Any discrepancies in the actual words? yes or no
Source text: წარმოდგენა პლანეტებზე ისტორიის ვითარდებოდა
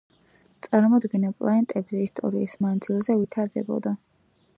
yes